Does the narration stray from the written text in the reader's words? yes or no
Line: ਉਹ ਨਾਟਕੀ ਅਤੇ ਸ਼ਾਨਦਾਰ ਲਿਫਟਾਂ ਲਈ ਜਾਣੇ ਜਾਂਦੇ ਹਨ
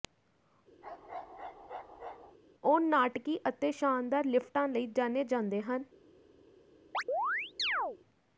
no